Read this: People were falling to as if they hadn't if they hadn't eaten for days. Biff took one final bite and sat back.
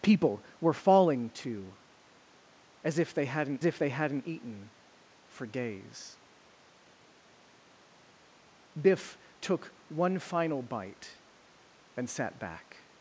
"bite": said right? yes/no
yes